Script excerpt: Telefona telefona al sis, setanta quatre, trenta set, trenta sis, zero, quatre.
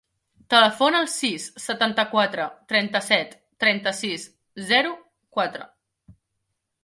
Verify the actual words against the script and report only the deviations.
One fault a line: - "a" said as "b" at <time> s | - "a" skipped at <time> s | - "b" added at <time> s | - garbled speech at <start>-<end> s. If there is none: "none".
- "telefona" skipped at 1.0 s